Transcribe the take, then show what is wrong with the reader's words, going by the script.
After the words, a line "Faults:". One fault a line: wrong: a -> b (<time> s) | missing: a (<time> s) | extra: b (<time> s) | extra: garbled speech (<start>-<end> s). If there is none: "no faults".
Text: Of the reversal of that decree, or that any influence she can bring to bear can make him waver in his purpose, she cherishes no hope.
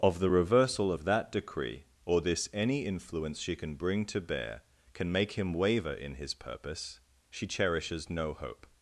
Of the reversal of that decree, or this any influence she can bring to bear can make him waver in his purpose, she cherishes no hope.
Faults:
wrong: that -> this (2.2 s)